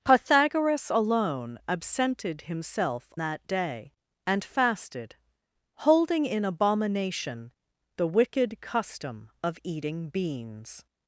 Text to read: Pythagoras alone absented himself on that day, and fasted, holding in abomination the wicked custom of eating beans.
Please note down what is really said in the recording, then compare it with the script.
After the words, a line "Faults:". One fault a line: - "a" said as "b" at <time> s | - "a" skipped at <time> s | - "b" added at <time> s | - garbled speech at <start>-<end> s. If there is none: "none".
Pythagoras alone absented himself that day, and fasted, holding in abomination the wicked custom of eating beans.
Faults:
- "on" skipped at 3.1 s